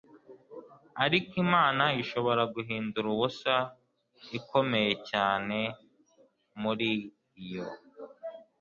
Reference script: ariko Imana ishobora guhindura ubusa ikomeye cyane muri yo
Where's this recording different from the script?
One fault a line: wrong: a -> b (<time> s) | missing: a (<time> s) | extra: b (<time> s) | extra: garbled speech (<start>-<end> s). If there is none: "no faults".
no faults